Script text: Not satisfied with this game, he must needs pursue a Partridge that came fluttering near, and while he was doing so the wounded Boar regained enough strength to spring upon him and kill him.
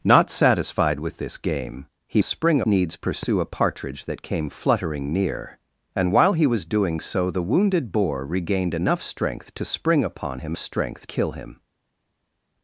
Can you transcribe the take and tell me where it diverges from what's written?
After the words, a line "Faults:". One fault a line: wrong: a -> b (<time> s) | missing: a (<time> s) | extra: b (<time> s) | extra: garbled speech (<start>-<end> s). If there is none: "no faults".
Not satisfied with this game, he spring needs pursue a Partridge that came fluttering near, and while he was doing so the wounded Boar regained enough strength to spring upon him strength kill him.
Faults:
wrong: must -> spring (2.2 s)
wrong: and -> strength (10.6 s)